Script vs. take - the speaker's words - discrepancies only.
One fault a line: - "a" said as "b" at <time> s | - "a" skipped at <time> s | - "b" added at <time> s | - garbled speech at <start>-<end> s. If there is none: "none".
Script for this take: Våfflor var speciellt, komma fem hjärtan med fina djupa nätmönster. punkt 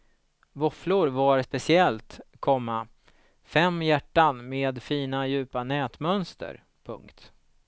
none